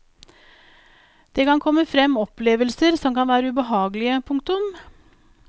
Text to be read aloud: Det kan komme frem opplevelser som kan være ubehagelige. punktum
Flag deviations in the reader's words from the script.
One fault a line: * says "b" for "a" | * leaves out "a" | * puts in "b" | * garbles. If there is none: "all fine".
all fine